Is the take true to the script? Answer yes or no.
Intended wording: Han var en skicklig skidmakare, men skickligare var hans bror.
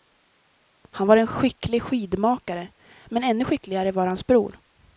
no